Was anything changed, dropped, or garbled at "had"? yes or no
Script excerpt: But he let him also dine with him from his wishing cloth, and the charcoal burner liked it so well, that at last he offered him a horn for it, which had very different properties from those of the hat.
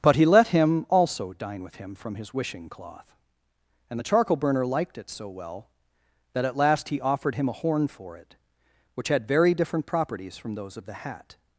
no